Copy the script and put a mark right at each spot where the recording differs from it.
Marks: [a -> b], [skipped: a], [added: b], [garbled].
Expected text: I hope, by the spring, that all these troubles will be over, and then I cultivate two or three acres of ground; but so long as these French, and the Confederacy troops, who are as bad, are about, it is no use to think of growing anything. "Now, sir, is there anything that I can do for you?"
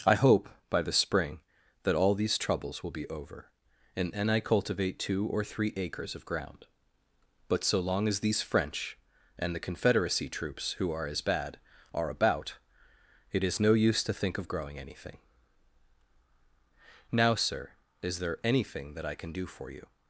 I hope, by the spring, that all these troubles will be over, and then I cultivate two or three acres of ground; but so long as these French, and the Confederacy troops, who are as bad, are about, it is no use to think of growing anything. "Now, sir, is there anything that I can do for you?"